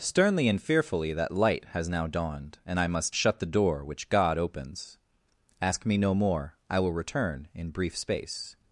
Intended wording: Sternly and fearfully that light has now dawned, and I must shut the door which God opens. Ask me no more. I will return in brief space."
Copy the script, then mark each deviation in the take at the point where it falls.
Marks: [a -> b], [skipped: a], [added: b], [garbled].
Sternly and fearfully that light has now dawned, and I must shut the door which God opens. Ask me no more. I will return in brief space."